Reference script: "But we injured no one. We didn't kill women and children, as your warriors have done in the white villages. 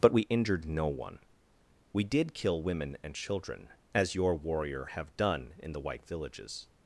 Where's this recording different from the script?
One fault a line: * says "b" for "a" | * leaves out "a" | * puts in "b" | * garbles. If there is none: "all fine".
* says "did" for "didn't"
* says "warrior" for "warriors"